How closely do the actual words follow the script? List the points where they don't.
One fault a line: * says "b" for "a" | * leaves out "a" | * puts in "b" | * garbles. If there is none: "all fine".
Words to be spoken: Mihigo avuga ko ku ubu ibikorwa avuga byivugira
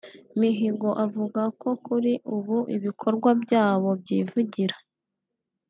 * says "kuri" for "ku"
* says "byabo" for "avuga"